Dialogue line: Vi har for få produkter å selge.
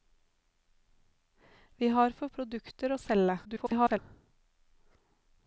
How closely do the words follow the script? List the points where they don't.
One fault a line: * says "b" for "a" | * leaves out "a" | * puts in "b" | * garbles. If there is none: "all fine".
* leaves out "få"
* garbles